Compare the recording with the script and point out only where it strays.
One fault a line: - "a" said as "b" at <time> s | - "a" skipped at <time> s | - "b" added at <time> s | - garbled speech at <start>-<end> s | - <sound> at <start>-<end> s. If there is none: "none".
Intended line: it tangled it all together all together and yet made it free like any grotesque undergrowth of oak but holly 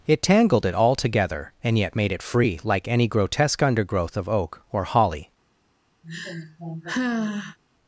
- "all together" skipped at 1.5 s
- "but" said as "or" at 4.7 s
- sigh at 6.0-7.6 s